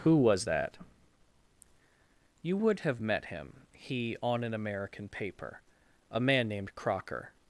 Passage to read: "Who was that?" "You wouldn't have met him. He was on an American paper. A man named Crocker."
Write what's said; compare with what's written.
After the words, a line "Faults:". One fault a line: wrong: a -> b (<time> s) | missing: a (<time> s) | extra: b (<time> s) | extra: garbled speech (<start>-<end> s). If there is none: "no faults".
"Who was that?" "You would have met him. He on an American paper. A man named Crocker."
Faults:
wrong: wouldn't -> would (2.6 s)
missing: was (4.2 s)